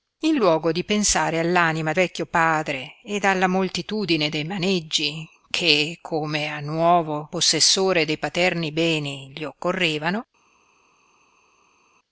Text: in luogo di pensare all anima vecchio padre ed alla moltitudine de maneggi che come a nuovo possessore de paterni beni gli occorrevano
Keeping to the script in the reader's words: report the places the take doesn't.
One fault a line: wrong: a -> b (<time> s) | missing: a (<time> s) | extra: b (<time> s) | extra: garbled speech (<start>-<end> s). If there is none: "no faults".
no faults